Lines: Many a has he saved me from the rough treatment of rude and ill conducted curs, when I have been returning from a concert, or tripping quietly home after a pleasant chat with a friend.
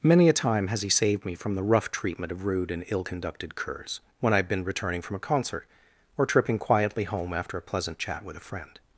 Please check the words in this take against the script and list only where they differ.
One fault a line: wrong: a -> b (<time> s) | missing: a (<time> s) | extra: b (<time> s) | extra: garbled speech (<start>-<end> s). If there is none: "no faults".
extra: time (0.3 s)